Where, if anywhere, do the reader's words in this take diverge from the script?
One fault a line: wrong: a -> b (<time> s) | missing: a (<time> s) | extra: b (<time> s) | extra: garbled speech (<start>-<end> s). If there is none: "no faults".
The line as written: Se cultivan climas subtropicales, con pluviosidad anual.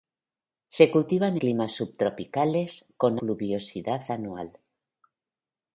no faults